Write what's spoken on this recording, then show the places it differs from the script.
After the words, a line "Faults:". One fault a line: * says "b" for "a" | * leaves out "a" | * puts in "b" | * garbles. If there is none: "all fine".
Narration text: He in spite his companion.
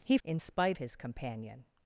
He in spite his companion.
Faults:
all fine